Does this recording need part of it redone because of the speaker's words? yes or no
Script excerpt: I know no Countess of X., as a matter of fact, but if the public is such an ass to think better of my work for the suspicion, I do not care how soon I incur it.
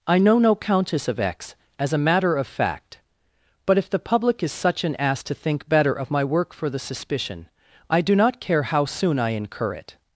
no